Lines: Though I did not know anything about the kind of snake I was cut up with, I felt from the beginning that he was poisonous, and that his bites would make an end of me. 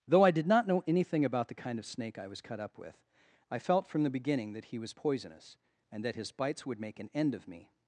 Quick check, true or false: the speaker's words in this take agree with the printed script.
true